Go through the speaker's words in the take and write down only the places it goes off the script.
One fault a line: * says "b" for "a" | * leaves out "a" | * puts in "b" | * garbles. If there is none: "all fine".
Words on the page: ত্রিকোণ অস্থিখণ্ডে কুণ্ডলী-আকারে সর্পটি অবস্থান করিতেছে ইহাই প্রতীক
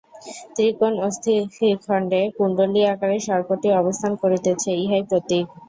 all fine